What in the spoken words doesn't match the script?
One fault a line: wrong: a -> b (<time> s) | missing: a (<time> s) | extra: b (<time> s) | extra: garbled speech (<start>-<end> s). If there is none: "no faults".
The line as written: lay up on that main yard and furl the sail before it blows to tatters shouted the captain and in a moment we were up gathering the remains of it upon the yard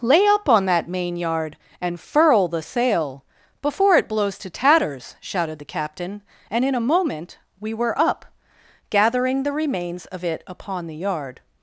no faults